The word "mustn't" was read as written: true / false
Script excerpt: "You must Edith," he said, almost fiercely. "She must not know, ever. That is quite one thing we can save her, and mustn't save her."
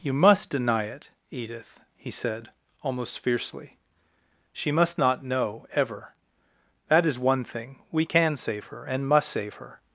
false